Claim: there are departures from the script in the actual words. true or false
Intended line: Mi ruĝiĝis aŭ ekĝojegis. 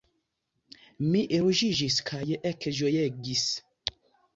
true